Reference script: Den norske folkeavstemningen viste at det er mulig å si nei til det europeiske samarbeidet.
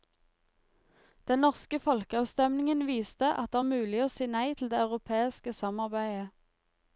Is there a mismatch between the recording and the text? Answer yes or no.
no